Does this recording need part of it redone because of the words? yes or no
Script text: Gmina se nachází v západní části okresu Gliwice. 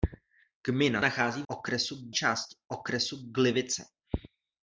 yes